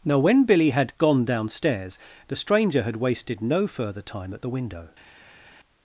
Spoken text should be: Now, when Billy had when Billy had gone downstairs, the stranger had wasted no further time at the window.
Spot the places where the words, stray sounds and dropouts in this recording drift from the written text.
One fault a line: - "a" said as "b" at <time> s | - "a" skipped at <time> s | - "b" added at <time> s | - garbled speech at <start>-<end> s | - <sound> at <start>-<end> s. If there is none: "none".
- "when Billy had" skipped at 1.0 s